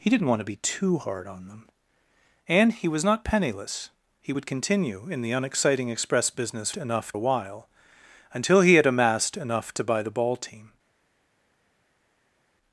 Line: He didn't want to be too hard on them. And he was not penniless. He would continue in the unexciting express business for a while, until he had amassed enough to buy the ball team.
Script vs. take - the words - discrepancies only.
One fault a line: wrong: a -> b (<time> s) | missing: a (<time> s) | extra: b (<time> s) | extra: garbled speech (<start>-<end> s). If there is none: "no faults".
wrong: for -> enough (6.7 s)